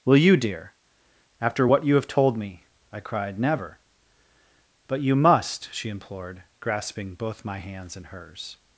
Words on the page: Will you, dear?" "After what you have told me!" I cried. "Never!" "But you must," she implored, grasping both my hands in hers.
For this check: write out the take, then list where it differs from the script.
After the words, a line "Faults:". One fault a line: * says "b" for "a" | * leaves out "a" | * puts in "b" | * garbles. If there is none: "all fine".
Will you, dear?" "After what you have told me!" I cried. "Never!" "But you must," she implored, grasping both my hands in hers.
Faults:
all fine